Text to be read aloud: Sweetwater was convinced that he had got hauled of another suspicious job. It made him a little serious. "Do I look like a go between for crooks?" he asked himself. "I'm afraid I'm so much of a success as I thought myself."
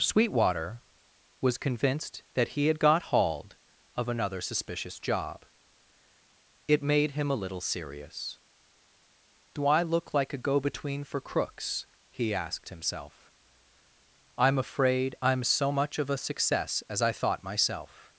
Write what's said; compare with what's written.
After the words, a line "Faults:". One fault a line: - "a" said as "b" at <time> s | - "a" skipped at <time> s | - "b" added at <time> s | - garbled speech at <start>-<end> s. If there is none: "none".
Sweetwater was convinced that he had got hauled of another suspicious job. It made him a little serious. "Do I look like a go between for crooks?" he asked himself. "I'm afraid I'm so much of a success as I thought myself."
Faults:
none